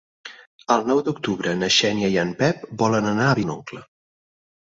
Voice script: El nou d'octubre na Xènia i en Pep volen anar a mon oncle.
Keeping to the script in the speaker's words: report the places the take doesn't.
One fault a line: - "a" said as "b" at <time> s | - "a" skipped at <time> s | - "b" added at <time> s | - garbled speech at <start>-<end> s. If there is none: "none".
none